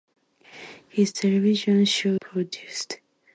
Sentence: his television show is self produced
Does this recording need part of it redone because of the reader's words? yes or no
yes